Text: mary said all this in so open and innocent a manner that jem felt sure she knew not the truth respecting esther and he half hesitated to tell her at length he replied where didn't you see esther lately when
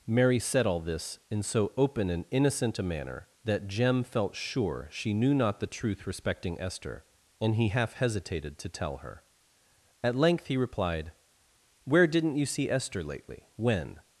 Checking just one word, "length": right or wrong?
right